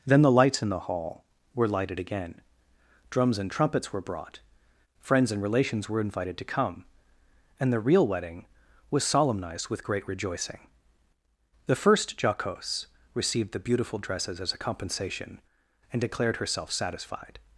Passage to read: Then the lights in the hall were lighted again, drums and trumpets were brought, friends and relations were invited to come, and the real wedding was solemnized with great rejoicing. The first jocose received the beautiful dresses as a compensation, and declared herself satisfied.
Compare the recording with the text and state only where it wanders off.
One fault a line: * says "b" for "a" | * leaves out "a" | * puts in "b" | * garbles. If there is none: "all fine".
all fine